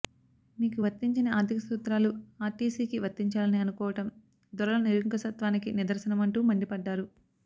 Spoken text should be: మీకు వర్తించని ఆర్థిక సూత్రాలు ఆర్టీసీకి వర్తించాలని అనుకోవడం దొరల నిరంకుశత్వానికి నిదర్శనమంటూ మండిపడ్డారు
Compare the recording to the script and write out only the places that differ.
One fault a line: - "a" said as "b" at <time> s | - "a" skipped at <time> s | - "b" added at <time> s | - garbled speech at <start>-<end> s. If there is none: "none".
none